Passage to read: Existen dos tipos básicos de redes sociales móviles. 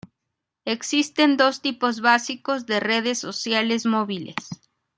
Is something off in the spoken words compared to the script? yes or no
no